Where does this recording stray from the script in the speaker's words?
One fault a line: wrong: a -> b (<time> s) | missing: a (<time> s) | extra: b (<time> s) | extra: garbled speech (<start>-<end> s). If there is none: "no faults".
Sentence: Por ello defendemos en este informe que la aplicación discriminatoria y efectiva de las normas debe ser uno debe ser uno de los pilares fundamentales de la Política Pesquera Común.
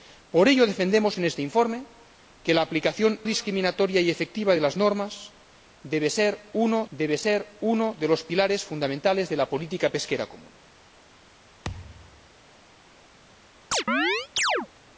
no faults